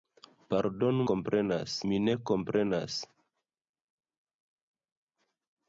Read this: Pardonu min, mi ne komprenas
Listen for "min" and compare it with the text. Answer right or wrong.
wrong